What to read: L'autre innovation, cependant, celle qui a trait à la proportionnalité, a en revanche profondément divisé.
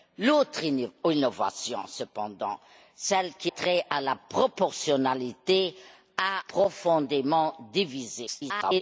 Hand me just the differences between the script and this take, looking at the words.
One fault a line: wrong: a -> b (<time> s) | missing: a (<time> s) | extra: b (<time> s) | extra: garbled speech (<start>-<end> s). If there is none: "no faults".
missing: a (3.5 s)
missing: en revanche (6.4 s)
extra: garbled speech (8.3-8.8 s)